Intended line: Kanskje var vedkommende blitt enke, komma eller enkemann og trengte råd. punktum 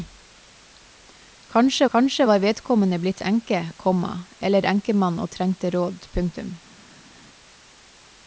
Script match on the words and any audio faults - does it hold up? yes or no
no